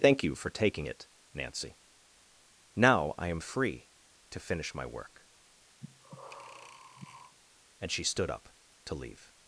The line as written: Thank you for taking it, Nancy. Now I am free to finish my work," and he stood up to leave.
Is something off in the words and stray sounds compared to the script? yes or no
yes